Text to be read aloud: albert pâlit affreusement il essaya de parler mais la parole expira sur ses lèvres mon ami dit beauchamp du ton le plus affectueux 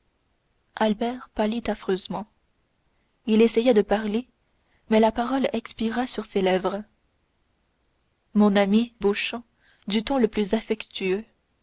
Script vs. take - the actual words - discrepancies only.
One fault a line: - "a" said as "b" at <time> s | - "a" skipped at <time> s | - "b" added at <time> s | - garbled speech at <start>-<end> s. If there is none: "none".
- "dit" skipped at 8.9 s